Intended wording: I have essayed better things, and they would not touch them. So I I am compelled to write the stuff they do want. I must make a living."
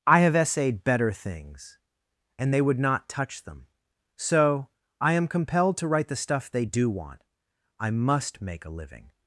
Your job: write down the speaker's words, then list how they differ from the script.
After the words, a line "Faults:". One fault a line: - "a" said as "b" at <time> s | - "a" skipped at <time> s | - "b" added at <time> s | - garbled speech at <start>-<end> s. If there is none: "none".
I have essayed better things, and they would not touch them. So I am compelled to write the stuff they do want. I must make a living."
Faults:
- "I" skipped at 5.1 s